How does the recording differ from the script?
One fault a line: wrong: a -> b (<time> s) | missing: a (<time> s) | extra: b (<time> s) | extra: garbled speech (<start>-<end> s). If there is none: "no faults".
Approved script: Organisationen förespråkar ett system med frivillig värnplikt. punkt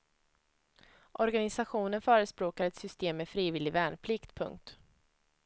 no faults